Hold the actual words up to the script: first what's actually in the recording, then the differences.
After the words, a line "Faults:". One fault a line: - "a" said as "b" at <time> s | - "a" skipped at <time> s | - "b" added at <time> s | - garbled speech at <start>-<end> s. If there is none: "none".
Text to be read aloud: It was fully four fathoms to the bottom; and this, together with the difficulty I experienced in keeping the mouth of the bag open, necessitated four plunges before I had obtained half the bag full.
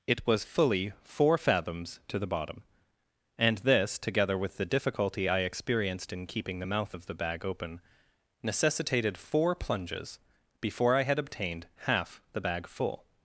It was fully four fathoms to the bottom; and this, together with the difficulty I experienced in keeping the mouth of the bag open, necessitated four plunges before I had obtained half the bag full.
Faults:
none